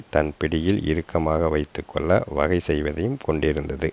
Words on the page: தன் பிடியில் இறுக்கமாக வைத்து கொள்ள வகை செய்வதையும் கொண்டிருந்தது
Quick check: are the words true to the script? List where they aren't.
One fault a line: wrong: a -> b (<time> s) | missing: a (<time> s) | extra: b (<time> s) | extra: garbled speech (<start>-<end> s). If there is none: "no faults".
no faults